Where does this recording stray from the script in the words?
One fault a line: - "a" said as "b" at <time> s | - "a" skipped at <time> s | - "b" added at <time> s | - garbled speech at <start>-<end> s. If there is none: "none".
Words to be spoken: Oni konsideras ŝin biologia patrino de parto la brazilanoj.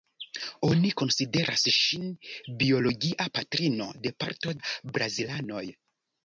none